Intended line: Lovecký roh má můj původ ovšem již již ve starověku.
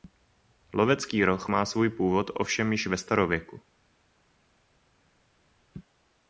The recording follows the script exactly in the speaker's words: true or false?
false